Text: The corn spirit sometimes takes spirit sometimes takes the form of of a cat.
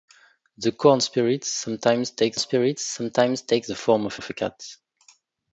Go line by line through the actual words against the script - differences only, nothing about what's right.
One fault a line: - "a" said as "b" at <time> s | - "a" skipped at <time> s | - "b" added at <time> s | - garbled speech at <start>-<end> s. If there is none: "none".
none